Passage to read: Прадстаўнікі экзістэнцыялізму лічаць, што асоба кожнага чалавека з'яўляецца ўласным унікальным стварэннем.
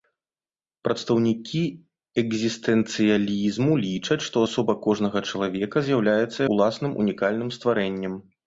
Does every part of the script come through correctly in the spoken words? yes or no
yes